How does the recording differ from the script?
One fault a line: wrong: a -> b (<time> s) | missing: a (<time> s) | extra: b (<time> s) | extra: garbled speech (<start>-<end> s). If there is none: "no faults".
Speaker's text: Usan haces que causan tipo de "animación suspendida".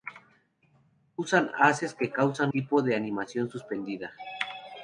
no faults